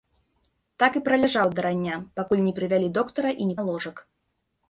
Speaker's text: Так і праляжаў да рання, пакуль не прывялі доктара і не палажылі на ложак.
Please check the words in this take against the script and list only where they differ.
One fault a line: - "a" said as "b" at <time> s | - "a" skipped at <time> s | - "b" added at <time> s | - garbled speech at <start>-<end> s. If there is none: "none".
- "палажылі" skipped at 3.5 s